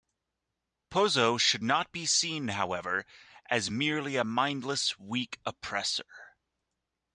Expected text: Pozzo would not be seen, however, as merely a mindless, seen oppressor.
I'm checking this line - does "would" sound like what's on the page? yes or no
no